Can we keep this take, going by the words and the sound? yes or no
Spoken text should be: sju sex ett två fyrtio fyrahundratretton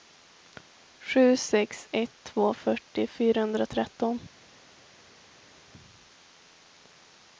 yes